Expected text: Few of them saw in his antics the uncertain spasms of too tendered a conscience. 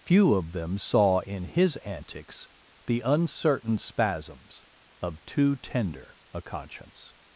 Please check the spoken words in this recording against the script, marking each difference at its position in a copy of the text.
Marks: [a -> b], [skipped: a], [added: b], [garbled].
Few of them saw in his antics the uncertain spasms of too [tendered -> tender] a conscience.